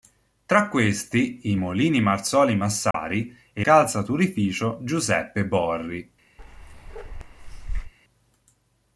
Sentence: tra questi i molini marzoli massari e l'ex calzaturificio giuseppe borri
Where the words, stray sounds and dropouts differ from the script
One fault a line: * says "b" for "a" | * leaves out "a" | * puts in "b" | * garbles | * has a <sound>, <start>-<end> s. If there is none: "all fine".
* has a dropout, 2.9-2.9 s
* leaves out "l'ex"
* has a bark, 6.4-7.9 s